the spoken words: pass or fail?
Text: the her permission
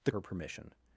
pass